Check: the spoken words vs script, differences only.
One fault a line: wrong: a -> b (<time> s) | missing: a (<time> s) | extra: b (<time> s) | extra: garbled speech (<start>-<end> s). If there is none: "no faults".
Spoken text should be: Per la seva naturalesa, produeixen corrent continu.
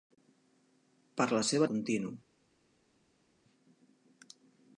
missing: naturalesa produeixen corrent (1.7 s)